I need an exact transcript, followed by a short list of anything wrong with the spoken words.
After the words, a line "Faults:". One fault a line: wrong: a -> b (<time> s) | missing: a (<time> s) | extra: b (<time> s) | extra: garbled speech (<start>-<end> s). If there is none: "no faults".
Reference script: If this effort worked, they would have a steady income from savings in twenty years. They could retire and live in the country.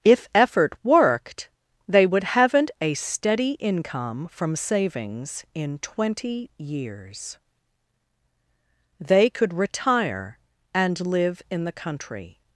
If effort worked, they would haven't a steady income from savings in twenty years. They could retire and live in the country.
Faults:
missing: this (0.3 s)
wrong: have -> haven't (2.2 s)